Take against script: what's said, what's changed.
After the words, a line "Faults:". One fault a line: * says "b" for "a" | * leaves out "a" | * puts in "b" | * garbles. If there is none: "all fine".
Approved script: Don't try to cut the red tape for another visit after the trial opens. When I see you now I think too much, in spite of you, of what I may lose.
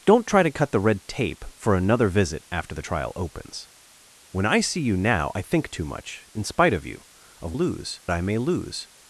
Don't try to cut the red tape for another visit after the trial opens. When I see you now I think too much, in spite of you, of lose I may lose.
Faults:
* says "lose" for "what"